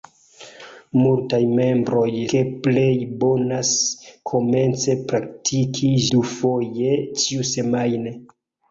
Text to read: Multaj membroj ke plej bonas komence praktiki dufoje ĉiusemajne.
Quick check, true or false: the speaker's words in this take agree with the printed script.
true